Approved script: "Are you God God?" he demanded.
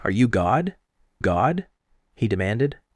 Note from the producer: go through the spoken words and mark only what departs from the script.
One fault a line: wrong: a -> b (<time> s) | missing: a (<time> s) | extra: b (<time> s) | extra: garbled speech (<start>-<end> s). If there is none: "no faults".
no faults